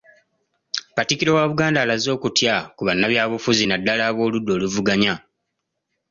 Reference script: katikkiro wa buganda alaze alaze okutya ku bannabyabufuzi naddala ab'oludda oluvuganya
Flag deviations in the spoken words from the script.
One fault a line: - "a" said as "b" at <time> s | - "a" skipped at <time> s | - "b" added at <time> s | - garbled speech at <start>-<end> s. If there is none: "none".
- "alaze" skipped at 2.1 s